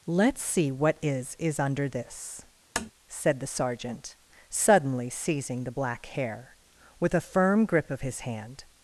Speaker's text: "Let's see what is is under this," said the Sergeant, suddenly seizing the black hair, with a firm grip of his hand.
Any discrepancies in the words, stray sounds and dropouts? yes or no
yes